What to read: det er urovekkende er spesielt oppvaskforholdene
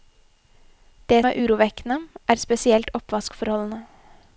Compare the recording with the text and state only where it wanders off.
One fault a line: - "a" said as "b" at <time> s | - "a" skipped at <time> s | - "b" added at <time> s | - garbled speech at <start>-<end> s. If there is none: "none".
none